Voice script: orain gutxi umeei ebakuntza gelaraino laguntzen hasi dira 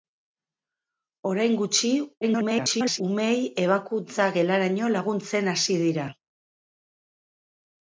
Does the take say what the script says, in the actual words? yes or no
no